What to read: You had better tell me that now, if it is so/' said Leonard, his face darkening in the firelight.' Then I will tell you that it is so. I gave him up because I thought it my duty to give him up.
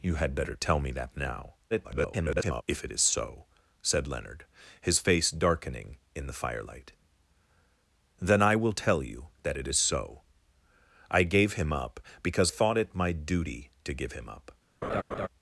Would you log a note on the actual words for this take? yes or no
yes